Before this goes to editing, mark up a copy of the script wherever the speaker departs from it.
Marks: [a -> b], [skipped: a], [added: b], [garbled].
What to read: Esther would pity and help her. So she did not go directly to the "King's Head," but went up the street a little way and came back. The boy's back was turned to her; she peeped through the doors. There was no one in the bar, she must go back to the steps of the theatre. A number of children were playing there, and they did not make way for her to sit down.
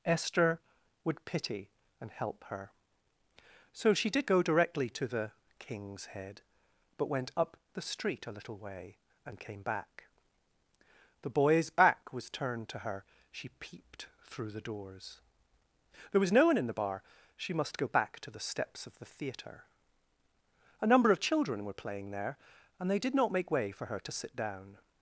Esther would pity and help her. So she did [skipped: not] go directly to the "King's Head," but went up the street a little way and came back. The boy's back was turned to her; she peeped through the doors. There was no one in the bar, she must go back to the steps of the theatre. A number of children were playing there, and they did not make way for her to sit down.